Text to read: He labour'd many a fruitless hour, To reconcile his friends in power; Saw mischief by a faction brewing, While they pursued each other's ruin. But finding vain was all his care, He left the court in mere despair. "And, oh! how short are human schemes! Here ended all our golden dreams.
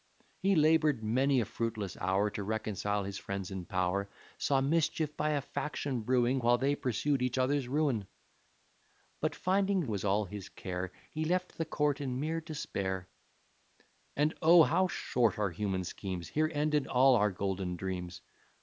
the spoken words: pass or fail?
fail